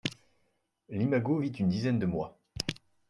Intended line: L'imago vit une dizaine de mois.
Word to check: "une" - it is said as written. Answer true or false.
true